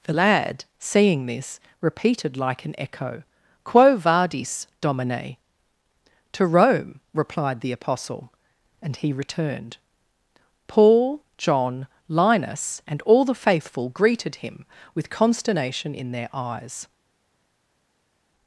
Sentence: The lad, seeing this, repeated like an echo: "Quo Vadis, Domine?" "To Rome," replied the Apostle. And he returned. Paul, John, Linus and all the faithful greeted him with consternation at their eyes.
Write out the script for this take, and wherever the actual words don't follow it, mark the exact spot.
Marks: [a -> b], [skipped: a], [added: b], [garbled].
The lad, seeing this, repeated like an echo: "Quo Vadis, Domine?" "To Rome," replied the Apostle. And he returned. Paul, John, Linus and all the faithful greeted him with consternation [at -> in] their eyes.